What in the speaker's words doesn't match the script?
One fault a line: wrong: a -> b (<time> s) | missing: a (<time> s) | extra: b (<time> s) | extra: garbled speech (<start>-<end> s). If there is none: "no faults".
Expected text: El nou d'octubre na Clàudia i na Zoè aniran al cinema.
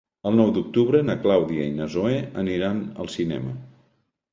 no faults